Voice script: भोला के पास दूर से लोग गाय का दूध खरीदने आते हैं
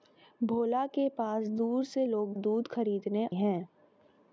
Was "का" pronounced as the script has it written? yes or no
no